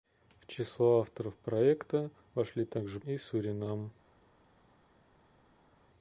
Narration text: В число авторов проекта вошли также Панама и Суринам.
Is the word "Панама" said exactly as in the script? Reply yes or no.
no